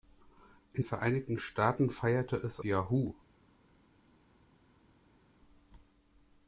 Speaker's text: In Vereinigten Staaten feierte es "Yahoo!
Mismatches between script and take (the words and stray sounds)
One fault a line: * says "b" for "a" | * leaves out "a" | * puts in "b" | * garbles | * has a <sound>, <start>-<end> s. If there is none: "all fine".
all fine